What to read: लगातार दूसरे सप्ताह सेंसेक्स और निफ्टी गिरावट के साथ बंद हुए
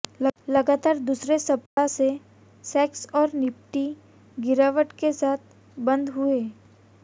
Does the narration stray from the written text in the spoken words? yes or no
no